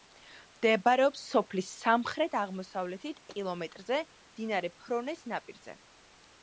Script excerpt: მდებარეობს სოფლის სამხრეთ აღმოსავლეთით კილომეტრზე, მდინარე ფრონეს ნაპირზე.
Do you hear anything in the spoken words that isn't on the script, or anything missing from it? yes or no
no